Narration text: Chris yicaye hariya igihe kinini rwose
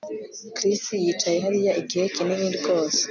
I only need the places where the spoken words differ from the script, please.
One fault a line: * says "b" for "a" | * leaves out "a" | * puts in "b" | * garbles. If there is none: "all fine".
all fine